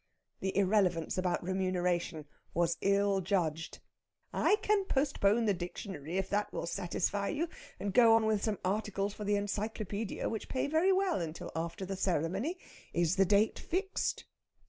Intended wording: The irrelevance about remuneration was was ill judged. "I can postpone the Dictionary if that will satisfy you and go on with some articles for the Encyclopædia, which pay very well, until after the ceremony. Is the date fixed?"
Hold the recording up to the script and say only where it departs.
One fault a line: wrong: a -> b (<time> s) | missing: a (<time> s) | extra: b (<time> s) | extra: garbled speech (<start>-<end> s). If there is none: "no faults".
missing: was (2.8 s)